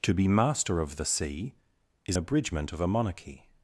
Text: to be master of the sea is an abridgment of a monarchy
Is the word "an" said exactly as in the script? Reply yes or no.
no